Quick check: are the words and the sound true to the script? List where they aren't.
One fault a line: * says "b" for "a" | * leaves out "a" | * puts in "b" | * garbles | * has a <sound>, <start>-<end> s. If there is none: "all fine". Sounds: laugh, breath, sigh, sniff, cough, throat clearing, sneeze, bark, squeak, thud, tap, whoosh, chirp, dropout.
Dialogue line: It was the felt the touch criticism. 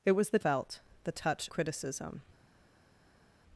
all fine